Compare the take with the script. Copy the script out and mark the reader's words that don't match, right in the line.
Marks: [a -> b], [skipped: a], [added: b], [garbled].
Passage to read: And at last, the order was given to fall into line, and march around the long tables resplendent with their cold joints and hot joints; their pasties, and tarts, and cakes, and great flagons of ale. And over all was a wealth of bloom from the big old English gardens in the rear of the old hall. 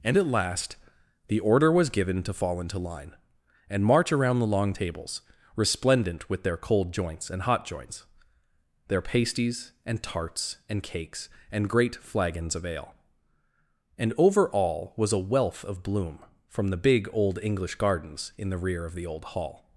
And at last, the order was given to fall into line, and march around the long tables resplendent with their cold joints and hot joints; their pasties, and tarts, and cakes, and great flagons of ale. And over all was a wealth of bloom from the big old English gardens in the rear of the old hall.